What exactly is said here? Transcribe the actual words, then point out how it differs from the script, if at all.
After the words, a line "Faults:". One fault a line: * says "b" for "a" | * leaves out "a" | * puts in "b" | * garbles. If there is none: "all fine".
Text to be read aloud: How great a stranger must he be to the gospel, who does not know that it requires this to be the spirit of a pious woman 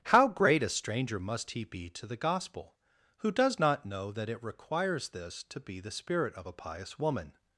How great a stranger must he be to the gospel, who does not know that it requires this to be the spirit of a pious woman
Faults:
all fine